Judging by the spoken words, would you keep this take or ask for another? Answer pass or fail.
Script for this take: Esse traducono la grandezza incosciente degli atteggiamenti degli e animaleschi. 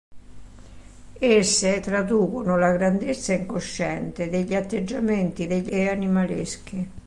pass